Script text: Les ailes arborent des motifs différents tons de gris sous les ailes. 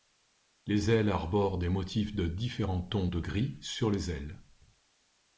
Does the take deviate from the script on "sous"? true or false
true